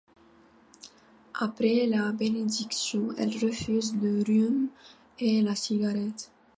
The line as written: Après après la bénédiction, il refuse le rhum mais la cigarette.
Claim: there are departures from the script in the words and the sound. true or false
true